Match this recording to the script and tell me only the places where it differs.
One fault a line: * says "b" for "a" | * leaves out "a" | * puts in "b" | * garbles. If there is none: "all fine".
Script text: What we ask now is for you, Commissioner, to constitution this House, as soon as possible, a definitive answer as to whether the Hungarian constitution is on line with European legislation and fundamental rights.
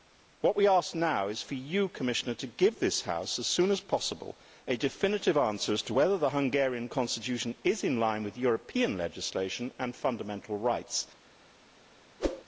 * says "give" for "constitution"
* says "in" for "on"